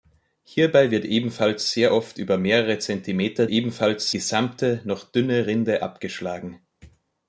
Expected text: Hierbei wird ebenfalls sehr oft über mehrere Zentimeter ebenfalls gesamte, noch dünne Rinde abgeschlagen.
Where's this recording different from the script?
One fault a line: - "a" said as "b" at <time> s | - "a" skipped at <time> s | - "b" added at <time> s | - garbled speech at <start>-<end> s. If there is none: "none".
none